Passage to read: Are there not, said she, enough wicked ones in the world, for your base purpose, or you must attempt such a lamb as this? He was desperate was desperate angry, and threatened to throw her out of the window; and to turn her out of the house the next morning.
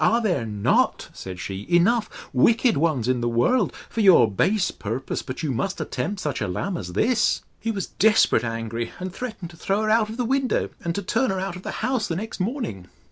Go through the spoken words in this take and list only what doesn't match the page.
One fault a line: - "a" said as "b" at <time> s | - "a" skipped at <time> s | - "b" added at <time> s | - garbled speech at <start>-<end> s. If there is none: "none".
- "or" said as "but" at 5.2 s
- "was desperate" skipped at 8.4 s